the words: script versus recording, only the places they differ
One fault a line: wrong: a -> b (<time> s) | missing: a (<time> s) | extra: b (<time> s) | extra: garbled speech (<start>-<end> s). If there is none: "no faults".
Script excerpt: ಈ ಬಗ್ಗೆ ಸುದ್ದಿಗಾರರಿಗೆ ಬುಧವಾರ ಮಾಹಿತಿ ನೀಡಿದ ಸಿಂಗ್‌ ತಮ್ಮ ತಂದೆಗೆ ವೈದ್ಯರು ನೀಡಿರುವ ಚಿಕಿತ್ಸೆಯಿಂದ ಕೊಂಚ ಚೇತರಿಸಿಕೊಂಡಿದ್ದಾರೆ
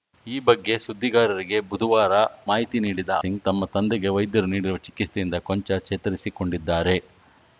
no faults